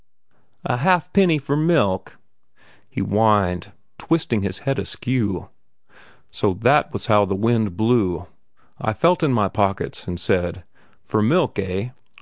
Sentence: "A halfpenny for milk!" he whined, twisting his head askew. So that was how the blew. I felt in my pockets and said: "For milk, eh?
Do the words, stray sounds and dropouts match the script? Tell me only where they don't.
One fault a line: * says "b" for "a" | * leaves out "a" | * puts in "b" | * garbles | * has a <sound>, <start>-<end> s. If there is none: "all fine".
* puts in "wind"